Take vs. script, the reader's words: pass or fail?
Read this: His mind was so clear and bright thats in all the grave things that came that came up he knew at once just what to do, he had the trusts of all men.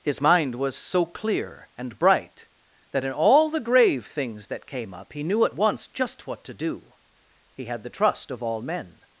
fail